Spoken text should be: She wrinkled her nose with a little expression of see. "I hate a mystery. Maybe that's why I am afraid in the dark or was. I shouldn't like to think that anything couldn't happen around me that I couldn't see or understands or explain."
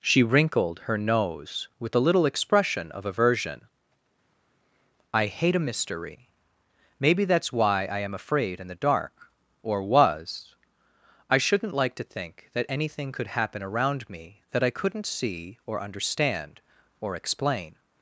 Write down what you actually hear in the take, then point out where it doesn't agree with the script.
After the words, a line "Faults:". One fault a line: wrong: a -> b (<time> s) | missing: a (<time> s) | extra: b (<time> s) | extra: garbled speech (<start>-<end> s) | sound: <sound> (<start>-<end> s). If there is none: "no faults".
She wrinkled her nose with a little expression of aversion. "I hate a mystery. Maybe that's why I am afraid in the dark or was. I shouldn't like to think that anything could happen around me that I couldn't see or understand or explain."
Faults:
wrong: see -> aversion (3.0 s)
wrong: couldn't -> could (13.1 s)
wrong: understands -> understand (15.8 s)